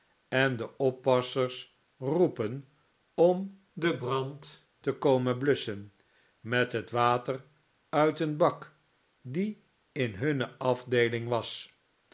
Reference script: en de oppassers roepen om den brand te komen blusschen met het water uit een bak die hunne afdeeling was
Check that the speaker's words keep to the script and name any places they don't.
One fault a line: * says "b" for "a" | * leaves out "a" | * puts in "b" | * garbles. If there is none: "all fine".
* puts in "in"